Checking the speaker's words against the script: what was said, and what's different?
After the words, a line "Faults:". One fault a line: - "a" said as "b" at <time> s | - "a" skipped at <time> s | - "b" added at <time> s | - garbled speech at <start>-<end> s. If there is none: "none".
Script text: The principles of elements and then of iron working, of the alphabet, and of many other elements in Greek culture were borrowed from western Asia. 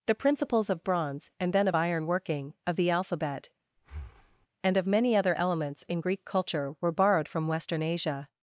The principles of bronze and then of iron working, of the alphabet, and of many other elements in Greek culture were borrowed from western Asia.
Faults:
- "elements" said as "bronze" at 0.8 s